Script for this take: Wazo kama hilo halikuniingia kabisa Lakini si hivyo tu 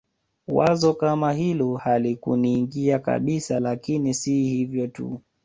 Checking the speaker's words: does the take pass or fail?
pass